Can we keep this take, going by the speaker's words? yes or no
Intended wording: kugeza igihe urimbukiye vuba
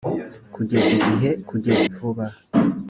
no